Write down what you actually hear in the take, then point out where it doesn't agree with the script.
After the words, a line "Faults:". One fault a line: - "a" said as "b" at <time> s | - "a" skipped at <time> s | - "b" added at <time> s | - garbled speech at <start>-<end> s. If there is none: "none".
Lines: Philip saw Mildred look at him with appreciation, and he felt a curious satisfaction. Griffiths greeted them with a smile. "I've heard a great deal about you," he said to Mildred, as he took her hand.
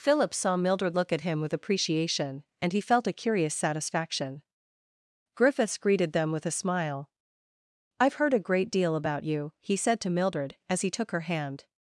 Philip saw Mildred look at him with appreciation, and he felt a curious satisfaction. Griffiths greeted them with a smile. "I've heard a great deal about you," he said to Mildred, as he took her hand.
Faults:
none